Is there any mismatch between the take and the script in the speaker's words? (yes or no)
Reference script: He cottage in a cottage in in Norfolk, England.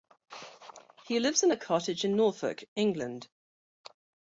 yes